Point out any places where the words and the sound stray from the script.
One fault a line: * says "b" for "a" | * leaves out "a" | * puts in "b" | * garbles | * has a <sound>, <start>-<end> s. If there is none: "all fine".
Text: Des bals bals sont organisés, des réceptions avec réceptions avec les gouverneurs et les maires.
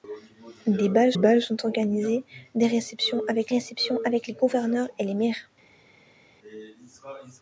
all fine